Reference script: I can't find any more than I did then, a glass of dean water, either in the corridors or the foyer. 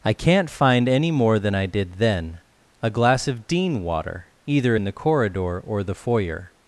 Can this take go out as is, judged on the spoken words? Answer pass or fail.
fail